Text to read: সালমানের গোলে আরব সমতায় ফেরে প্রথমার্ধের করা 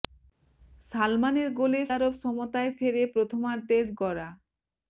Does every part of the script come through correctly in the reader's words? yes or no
yes